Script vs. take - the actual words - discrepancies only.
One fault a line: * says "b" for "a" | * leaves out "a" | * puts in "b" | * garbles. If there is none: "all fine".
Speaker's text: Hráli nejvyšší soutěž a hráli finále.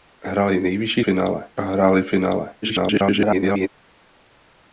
* says "finále" for "soutěž"
* garbles